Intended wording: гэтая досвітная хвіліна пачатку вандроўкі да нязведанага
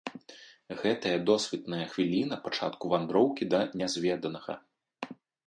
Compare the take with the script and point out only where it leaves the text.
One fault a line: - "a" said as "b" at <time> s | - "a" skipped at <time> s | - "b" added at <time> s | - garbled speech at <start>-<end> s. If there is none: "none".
none